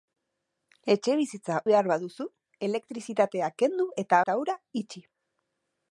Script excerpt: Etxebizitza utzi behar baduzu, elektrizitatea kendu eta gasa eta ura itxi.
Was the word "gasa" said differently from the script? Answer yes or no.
yes